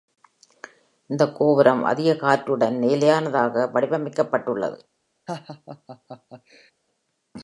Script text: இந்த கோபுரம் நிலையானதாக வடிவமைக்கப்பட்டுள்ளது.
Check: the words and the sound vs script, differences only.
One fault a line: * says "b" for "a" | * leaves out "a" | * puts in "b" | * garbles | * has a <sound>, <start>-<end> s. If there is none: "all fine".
* puts in "அதிக காற்றுடன்"
* has a laugh, 5.3-6.7 s